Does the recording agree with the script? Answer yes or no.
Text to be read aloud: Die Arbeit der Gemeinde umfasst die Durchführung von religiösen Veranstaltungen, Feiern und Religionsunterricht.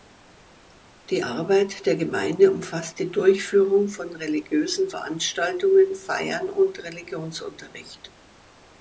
yes